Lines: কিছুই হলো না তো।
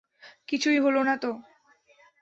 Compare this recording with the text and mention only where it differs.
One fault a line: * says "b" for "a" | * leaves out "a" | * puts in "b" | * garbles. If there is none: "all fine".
all fine